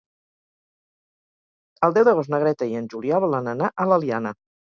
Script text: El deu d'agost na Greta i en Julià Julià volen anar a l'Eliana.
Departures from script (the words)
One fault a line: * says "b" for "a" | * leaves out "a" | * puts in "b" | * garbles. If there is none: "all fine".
* leaves out "Julià"